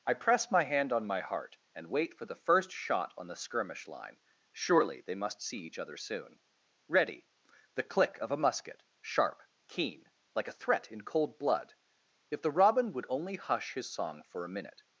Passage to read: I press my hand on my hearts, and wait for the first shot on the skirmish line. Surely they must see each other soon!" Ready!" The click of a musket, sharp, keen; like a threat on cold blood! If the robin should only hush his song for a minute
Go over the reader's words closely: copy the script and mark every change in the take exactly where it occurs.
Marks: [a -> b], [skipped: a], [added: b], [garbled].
I press my hand on my [hearts, -> heart] and wait for the first shot on the skirmish line. Surely they must see each other soon!" Ready!" The click of a musket, sharp, keen; like a threat [on -> in] cold blood! If the robin [should -> would] only hush his song for a minute